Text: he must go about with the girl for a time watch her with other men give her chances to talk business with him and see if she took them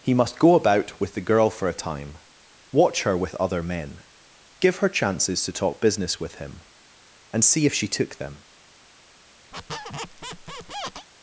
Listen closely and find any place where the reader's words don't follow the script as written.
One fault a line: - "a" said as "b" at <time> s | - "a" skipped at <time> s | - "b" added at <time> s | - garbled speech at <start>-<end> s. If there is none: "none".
none